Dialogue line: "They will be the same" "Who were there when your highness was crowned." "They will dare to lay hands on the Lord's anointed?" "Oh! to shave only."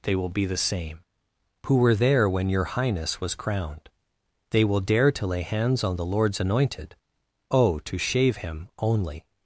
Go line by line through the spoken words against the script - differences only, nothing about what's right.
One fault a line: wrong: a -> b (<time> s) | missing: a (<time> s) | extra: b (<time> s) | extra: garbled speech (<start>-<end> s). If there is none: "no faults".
extra: him (8.4 s)